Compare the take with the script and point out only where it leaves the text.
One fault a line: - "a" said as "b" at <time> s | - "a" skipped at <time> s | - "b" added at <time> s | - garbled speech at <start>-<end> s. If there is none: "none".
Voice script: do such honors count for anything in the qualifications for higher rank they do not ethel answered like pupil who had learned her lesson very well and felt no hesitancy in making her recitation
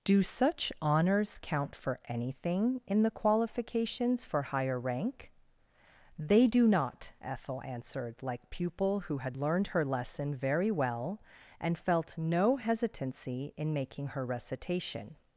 none